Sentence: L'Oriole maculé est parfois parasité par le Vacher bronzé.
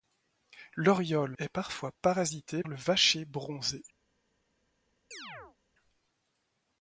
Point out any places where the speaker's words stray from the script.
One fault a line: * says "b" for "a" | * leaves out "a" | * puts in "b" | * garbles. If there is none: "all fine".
* leaves out "maculé"
* leaves out "par"